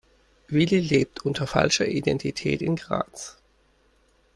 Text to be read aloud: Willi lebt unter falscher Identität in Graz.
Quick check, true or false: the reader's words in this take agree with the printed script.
true